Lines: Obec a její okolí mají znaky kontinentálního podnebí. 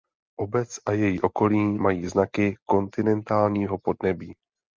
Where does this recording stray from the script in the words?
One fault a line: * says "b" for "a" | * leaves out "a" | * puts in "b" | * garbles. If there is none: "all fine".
all fine